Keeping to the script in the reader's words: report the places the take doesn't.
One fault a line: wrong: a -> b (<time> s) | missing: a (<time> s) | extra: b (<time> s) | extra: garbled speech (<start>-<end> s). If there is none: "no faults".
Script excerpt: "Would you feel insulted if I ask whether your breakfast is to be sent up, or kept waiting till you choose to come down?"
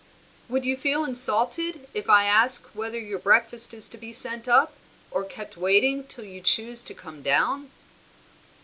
no faults